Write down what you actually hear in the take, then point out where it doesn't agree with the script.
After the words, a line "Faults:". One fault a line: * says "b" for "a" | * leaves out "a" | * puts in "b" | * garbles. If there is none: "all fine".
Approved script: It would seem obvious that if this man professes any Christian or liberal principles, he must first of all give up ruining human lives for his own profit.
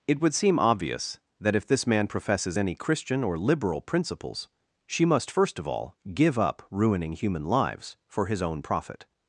It would seem obvious that if this man professes any Christian or liberal principles, she must first of all give up ruining human lives for his own profit.
Faults:
* says "she" for "he"